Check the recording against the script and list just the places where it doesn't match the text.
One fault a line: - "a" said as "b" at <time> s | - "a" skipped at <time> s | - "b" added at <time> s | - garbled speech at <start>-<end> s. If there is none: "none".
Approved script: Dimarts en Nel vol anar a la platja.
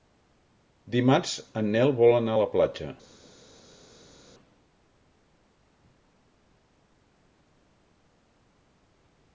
none